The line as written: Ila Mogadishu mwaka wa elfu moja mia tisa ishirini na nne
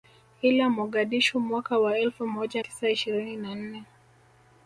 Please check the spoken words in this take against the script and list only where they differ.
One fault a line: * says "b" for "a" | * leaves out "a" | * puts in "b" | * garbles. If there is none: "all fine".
* leaves out "mia"